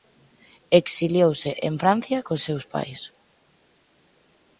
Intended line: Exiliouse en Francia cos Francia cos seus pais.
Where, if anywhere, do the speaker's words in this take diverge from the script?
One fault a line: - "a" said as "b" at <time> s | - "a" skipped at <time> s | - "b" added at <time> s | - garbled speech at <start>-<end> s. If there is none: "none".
- "Francia cos" skipped at 2.4 s